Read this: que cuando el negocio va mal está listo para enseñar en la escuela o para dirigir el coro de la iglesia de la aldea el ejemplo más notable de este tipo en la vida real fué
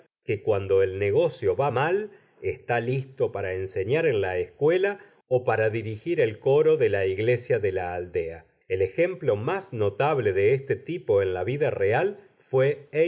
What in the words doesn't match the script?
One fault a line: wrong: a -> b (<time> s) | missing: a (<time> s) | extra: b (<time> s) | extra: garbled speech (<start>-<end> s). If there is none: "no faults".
no faults